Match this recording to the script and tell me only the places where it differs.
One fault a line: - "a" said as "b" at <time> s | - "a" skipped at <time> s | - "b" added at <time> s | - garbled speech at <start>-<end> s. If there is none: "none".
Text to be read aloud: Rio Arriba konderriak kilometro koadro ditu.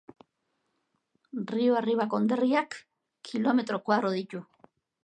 none